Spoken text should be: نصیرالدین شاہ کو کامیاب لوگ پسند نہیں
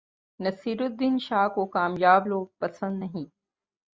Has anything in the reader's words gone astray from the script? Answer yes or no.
no